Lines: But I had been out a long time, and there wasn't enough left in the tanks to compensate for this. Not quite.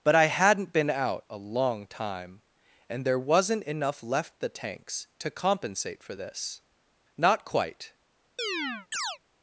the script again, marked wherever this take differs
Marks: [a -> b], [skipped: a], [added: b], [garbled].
But I [had -> hadn't] been out a long time, and there wasn't enough left [skipped: in] the tanks to compensate for this. Not quite.